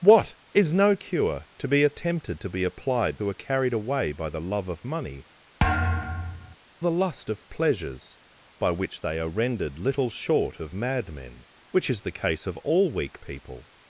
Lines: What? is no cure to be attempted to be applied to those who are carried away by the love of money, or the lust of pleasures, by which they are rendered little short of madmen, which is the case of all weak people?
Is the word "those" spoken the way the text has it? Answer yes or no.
no